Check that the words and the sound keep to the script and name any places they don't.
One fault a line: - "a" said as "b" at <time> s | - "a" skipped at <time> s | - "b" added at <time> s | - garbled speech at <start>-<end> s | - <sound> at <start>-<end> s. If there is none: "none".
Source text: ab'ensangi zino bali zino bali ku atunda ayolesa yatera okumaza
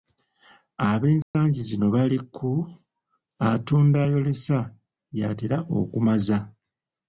- dropout at 1.2-1.3 s
- "zino bali" skipped at 2.2 s